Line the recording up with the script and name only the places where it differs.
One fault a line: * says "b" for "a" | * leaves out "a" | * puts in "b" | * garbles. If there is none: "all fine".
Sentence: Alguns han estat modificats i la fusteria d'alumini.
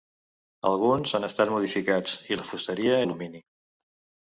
all fine